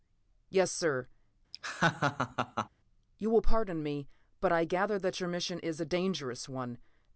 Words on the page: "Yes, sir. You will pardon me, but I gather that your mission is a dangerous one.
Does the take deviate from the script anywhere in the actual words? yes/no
no